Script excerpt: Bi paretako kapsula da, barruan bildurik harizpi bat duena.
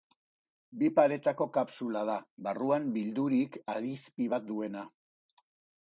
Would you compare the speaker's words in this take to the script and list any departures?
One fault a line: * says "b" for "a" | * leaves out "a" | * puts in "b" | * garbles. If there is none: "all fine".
all fine